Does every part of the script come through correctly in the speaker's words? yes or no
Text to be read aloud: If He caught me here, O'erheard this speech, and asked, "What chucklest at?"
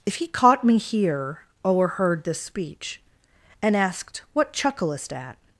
yes